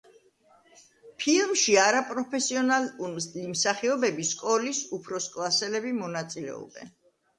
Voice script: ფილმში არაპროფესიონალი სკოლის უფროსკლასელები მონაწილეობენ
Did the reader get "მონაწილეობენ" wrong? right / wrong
right